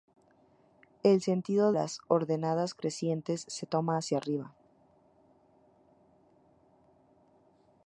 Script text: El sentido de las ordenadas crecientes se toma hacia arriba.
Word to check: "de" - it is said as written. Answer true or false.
false